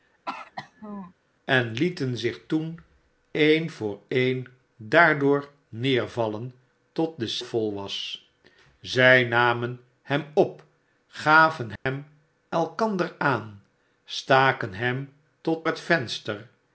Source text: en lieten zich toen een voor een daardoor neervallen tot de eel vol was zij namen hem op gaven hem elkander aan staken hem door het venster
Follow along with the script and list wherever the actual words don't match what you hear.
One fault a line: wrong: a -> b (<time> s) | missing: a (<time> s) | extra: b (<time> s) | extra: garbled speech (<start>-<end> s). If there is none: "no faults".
missing: eel (7.4 s)
wrong: door -> tot (15.4 s)